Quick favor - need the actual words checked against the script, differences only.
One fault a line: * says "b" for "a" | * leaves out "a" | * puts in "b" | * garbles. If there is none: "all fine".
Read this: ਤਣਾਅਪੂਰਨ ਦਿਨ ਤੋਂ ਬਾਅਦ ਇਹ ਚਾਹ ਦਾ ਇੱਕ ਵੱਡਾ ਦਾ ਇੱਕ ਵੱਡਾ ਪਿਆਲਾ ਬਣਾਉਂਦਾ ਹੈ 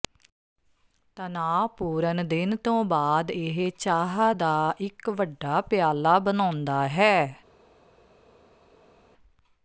* leaves out "ਦਾ ਇੱਕ ਵੱਡਾ"